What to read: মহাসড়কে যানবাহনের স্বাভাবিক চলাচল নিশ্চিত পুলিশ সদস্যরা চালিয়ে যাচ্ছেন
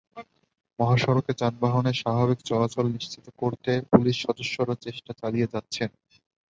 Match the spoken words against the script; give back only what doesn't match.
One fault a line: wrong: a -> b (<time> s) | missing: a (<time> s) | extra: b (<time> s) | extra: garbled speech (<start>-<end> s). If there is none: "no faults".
extra: করতে (3.4 s)
extra: চেষ্টা (4.8 s)